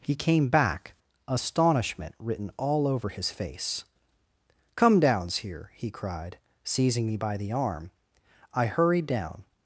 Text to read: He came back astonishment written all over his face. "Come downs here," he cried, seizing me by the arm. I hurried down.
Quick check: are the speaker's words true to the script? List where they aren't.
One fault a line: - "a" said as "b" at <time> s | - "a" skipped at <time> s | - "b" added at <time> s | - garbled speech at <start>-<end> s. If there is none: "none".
none